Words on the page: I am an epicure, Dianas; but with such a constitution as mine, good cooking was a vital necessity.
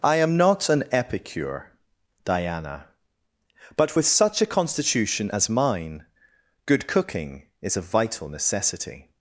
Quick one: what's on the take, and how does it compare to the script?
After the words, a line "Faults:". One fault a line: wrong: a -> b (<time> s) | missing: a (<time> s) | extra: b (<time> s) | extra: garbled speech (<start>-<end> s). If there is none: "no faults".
I am not an epicure, Diana; but with such a constitution as mine, good cooking is a vital necessity.
Faults:
extra: not (0.3 s)
wrong: Dianas -> Diana (2.2 s)
wrong: was -> is (7.6 s)